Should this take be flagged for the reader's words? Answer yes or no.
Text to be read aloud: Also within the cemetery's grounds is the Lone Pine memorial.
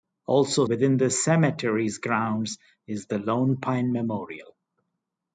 no